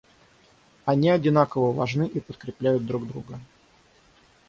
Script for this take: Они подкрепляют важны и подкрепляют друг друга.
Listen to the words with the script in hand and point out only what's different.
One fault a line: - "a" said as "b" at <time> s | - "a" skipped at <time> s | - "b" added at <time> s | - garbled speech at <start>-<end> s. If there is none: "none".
- "подкрепляют" said as "одинаково" at 1.1 s